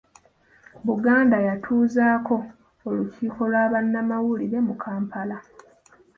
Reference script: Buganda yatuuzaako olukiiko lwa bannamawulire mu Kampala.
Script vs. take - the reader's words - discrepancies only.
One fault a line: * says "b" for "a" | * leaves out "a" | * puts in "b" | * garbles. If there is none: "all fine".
all fine